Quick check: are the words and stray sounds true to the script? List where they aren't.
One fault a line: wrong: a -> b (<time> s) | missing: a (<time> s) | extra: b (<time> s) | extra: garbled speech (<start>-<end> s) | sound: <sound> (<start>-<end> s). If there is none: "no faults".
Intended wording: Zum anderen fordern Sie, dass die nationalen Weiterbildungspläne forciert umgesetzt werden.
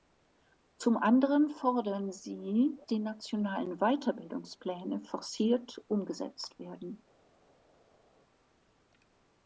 missing: dass (2.8 s)